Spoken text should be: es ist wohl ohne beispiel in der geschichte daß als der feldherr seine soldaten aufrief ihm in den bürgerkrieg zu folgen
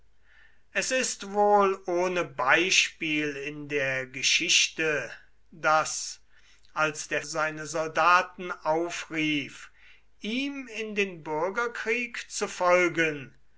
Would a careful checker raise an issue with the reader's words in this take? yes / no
yes